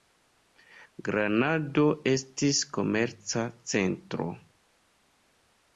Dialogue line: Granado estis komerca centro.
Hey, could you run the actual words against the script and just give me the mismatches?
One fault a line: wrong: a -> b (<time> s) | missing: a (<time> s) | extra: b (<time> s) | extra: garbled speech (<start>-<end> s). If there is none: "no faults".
no faults